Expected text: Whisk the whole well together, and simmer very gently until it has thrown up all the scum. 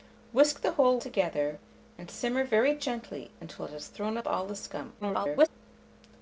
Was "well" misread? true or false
true